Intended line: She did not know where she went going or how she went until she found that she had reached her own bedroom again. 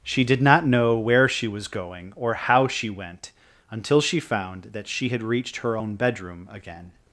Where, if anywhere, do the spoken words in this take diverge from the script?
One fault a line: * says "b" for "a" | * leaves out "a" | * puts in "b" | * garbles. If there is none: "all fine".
* says "was" for "went"